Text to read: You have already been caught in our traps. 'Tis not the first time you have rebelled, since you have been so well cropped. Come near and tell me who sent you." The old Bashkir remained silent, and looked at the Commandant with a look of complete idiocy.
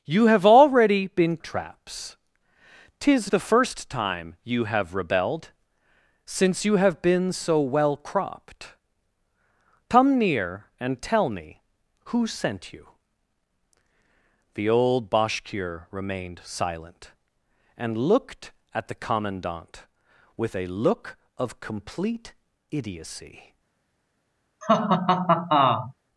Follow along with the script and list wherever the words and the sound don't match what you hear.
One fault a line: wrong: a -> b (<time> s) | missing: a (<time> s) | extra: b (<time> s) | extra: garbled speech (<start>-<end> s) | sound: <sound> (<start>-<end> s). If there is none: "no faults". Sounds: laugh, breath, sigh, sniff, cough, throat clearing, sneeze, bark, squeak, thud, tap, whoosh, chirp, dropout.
missing: caught in our (1.4 s)
missing: not (3.3 s)
sound: laugh (24.6-25.9 s)